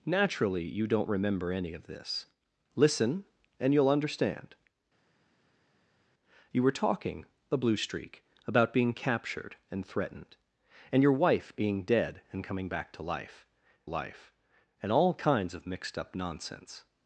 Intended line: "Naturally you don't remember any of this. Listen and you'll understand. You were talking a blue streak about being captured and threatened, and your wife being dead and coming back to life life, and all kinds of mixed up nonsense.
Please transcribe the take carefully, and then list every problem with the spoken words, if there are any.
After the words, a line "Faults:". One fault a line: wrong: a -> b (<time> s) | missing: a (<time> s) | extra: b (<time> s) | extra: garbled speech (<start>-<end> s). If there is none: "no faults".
"Naturally you don't remember any of this. Listen and you'll understand. You were talking a blue streak about being captured and threatened, and your wife being dead and coming back to life life, and all kinds of mixed up nonsense.
Faults:
no faults